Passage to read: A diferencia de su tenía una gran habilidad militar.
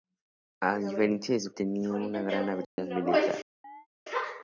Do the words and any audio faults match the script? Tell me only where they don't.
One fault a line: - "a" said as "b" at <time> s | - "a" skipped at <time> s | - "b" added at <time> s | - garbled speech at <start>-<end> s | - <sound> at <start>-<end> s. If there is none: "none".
- dropout at 2.6-2.8 s
- chirp at 3.6-3.9 s